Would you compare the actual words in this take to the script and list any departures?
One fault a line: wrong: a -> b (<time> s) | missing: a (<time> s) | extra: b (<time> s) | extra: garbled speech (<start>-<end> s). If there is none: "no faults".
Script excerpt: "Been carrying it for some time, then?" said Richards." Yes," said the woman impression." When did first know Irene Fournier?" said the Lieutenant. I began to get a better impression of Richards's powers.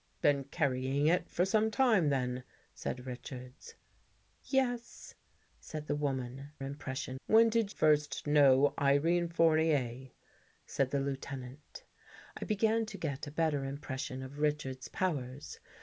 no faults